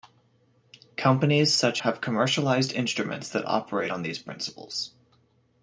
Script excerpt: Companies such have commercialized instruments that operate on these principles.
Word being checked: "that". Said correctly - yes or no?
yes